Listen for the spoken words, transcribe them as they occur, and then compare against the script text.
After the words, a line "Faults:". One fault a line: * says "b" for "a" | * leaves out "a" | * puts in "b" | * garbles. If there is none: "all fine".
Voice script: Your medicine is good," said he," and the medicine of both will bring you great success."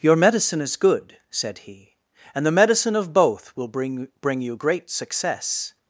Your medicine is good," said he," and the medicine of both will bring bring you great success."
Faults:
* puts in "bring"